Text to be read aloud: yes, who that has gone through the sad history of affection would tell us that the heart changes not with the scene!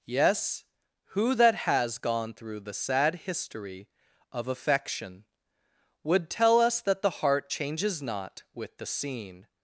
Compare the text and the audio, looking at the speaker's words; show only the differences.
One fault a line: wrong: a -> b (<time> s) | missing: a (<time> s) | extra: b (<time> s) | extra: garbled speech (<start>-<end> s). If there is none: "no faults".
no faults